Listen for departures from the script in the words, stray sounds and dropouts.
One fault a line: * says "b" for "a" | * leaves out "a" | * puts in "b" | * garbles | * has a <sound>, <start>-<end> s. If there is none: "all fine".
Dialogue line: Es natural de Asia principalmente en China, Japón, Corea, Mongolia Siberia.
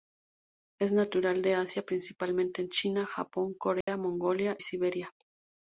* has a dropout, 3.8-3.9 s